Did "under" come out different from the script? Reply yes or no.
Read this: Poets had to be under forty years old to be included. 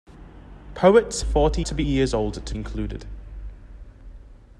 yes